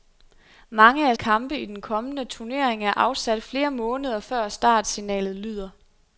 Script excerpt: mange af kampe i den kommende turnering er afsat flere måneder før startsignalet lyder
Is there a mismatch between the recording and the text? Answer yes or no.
no